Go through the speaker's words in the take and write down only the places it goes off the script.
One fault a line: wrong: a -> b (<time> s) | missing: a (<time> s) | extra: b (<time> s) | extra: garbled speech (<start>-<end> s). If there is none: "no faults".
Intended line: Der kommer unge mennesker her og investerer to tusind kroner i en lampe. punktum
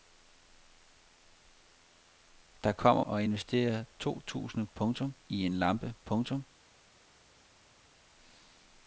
missing: unge mennesker her (3.0 s)
wrong: kroner -> punktum (4.7 s)